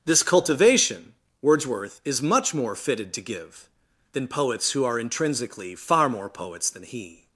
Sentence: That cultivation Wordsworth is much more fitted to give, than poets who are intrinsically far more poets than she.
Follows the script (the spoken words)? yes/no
no